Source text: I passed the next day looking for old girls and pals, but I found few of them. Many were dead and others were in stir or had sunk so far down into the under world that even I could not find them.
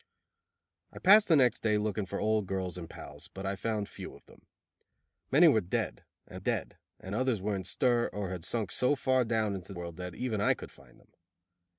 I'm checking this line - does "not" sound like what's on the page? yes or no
no